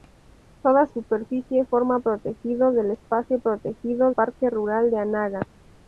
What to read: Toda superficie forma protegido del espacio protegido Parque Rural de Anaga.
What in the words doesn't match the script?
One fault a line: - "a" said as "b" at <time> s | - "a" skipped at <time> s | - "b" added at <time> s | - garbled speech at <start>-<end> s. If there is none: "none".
none